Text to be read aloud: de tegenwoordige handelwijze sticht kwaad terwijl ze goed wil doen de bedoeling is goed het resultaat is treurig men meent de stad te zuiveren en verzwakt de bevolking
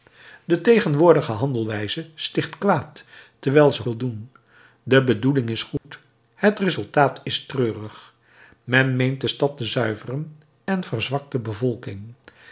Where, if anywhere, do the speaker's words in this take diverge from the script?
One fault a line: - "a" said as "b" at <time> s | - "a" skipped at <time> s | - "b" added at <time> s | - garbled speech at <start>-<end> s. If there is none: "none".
- "goed" skipped at 3.8 s